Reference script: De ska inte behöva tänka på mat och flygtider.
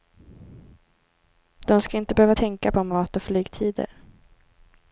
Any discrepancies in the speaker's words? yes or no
no